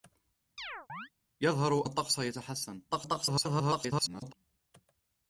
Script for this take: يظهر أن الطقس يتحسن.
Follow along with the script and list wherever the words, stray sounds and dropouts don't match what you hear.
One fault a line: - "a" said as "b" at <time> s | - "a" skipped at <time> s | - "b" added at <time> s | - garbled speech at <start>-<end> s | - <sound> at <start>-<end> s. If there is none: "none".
- chirp at 0.6-1.1 s
- "أن" skipped at 1.9 s
- garbled speech at 2.9-4.3 s